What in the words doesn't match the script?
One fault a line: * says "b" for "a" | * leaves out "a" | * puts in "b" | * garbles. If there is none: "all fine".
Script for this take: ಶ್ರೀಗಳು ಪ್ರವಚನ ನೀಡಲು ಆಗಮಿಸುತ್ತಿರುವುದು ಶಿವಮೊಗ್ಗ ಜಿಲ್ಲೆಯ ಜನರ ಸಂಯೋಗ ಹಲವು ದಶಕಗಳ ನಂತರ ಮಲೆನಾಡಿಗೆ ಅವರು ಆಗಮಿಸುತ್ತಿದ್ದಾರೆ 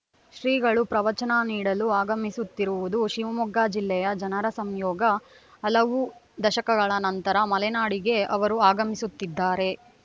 all fine